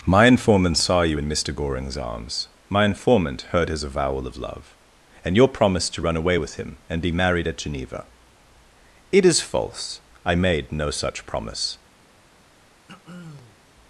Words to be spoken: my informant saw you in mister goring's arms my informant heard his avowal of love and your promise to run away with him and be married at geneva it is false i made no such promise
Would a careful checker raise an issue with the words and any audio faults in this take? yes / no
yes